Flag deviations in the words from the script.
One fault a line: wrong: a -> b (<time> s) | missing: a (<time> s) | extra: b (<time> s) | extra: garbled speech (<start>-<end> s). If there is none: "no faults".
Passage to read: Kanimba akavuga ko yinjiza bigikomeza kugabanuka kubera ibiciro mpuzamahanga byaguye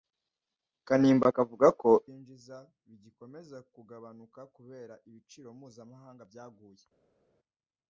no faults